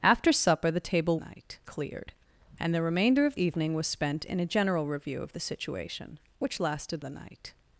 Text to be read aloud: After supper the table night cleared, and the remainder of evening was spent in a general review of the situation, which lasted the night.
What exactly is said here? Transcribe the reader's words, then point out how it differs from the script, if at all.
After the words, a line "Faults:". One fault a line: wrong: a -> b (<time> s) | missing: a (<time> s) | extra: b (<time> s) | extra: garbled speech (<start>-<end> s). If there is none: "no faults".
After supper the table night cleared, and the remainder of evening was spent in a general review of the situation, which lasted the night.
Faults:
no faults